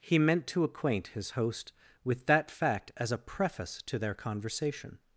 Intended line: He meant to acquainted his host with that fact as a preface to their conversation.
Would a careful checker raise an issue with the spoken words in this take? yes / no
yes